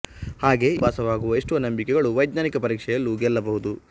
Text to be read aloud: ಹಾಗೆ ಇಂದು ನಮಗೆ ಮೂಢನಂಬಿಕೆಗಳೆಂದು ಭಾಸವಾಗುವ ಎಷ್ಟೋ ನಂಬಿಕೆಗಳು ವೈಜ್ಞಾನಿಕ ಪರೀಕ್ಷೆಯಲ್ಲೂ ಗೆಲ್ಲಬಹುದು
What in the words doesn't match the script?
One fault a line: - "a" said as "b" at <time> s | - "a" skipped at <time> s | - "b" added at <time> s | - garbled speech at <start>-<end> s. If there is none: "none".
- "ಇಂದು ನಮಗೆ ಮೂಢನಂಬಿಕೆಗಳೆಂದು" skipped at 0.7 s